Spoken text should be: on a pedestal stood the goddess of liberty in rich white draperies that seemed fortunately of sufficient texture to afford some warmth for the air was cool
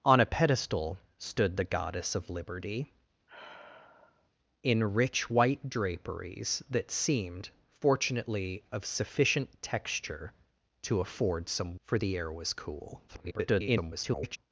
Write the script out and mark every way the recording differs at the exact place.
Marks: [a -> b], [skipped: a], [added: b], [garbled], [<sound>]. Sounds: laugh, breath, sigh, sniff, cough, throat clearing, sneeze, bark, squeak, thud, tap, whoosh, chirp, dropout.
on a pedestal stood the goddess of liberty [sigh] in rich white draperies that seemed fortunately of sufficient texture to afford some [skipped: warmth] for the air was cool [garbled]